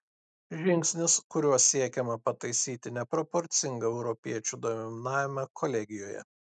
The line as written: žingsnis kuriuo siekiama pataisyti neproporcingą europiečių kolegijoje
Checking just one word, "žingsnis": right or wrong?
right